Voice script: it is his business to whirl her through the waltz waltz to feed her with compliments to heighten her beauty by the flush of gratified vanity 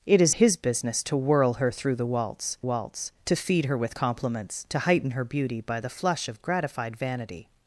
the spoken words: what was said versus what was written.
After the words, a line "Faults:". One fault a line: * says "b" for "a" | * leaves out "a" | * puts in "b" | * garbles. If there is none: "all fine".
it is his business to whirl her through the waltz waltz to feed her with compliments to heighten her beauty by the flush of gratified vanity
Faults:
all fine